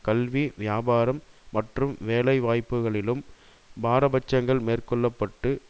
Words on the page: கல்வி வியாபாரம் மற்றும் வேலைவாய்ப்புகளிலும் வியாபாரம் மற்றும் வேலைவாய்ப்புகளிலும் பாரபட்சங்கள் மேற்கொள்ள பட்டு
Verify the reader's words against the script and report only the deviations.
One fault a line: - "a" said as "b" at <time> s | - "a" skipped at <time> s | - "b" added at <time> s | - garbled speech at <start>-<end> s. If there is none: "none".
- "வியாபாரம் மற்றும் வேலைவாய்ப்புகளிலும்" skipped at 3.2 s